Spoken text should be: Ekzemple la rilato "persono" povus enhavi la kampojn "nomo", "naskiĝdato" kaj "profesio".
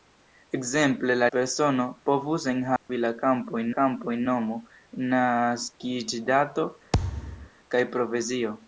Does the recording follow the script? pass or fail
fail